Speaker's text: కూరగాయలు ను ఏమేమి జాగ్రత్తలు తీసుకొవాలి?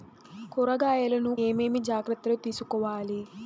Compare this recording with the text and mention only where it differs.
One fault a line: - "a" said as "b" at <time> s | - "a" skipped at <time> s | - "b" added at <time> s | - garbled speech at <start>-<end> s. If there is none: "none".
none